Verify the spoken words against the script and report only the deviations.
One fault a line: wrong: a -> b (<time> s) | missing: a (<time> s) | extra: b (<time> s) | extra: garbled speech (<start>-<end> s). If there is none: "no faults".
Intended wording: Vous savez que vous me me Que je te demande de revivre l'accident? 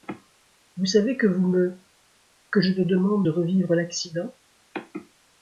missing: me (1.8 s)